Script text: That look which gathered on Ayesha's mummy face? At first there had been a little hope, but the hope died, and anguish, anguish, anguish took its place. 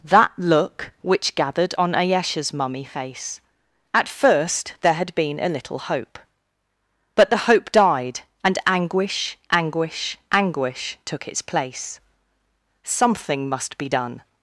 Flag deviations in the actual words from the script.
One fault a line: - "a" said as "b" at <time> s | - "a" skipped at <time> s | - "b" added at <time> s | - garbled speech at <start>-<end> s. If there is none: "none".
- "Something must be done" added at 12.9 s